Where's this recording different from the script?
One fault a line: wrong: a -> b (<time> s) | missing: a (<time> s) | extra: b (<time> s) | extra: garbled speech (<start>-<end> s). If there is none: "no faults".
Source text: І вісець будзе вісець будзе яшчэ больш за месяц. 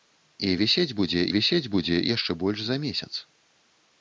no faults